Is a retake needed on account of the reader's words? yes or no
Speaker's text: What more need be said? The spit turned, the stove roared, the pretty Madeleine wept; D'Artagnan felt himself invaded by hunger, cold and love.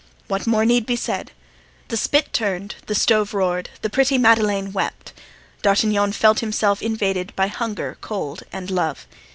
no